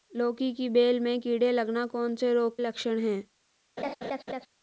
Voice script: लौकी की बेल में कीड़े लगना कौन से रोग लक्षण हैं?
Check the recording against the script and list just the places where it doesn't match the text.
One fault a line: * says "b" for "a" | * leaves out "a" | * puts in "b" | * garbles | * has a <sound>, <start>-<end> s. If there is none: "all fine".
* has a laugh, 3.8-4.5 s